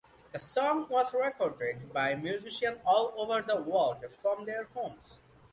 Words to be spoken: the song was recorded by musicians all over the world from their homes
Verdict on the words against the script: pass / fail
pass